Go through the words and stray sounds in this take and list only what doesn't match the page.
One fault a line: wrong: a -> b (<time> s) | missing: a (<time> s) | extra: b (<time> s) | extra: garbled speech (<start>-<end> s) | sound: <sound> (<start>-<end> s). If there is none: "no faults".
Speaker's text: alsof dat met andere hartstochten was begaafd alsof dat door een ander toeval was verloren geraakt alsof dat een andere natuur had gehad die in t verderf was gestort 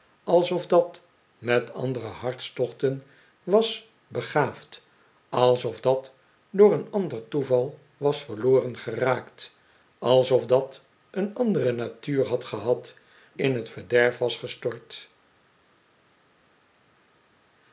missing: die (12.9 s)